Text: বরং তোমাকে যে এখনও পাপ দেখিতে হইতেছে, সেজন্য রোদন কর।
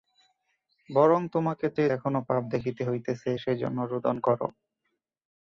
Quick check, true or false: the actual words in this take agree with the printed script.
true